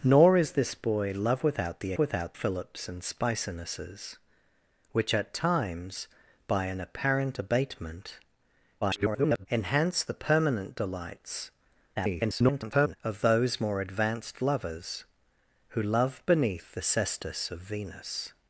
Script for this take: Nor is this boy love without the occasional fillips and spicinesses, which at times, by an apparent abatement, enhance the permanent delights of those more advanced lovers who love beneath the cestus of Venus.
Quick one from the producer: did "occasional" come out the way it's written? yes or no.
no